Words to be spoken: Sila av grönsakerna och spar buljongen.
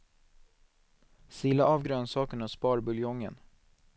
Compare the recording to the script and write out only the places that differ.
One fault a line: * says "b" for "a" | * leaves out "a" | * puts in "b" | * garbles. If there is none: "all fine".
all fine